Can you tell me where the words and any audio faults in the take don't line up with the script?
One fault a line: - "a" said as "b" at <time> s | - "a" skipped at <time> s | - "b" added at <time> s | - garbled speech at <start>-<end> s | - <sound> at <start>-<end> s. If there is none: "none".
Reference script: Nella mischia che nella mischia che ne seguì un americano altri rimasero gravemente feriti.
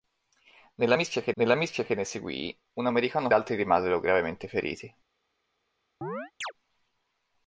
- chirp at 6.0-6.5 s